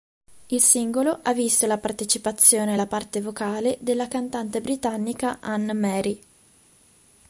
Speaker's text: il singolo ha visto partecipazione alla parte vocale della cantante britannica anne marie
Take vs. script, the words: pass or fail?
fail